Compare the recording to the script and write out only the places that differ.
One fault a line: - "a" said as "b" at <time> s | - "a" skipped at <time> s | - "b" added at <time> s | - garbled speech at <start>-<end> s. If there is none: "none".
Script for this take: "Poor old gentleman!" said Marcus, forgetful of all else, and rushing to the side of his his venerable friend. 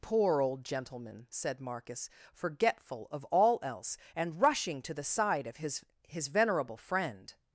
none